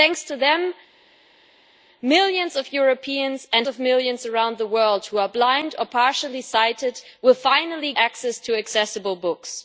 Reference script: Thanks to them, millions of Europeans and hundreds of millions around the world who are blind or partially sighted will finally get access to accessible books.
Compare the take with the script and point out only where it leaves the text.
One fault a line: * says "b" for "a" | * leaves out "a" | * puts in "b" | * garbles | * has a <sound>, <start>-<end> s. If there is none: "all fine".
* leaves out "hundreds"
* leaves out "get"